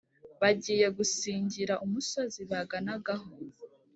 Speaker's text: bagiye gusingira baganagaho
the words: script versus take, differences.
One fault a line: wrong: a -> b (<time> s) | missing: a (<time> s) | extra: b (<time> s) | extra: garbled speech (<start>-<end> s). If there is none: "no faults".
extra: umusozi (1.8 s)